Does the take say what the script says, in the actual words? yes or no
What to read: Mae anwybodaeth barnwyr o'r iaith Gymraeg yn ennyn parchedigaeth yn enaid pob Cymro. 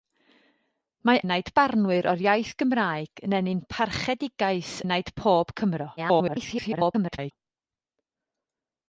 no